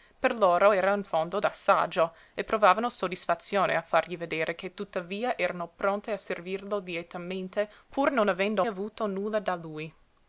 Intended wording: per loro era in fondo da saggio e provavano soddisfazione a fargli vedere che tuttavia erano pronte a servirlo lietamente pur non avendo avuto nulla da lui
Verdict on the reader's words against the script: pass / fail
pass